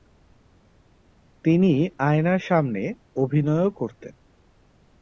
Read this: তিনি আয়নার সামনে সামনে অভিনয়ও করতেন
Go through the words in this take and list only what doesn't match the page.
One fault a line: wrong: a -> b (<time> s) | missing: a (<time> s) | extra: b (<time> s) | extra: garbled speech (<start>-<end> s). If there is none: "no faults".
missing: সামনে (2.8 s)